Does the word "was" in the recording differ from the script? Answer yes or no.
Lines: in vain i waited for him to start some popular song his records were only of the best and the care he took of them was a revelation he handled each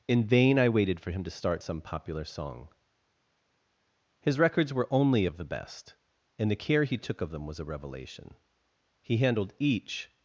no